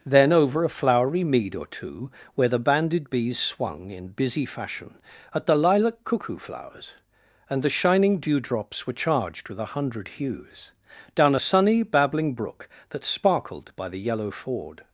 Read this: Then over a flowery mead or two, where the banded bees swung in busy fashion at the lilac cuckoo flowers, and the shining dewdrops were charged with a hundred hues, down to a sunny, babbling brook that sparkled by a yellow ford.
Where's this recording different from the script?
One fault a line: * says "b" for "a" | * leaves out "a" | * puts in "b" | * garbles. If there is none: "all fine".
* leaves out "to"
* says "the" for "a"